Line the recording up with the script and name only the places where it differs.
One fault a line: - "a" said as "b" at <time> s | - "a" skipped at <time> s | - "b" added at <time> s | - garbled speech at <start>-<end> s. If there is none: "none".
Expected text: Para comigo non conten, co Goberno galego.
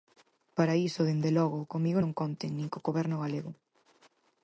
- "iso dende logo" added at 0.9 s
- "nin" added at 2.5 s